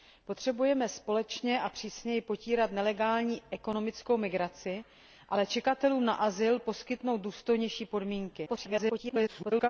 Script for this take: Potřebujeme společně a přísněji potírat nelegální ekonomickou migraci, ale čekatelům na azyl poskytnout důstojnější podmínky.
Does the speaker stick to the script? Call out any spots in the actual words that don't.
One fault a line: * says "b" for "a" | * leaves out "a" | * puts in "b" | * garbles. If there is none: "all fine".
* garbles